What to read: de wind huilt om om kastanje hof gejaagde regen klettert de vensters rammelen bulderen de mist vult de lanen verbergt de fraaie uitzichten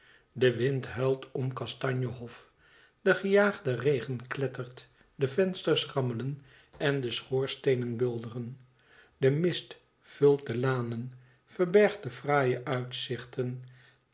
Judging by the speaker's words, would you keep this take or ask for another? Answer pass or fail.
fail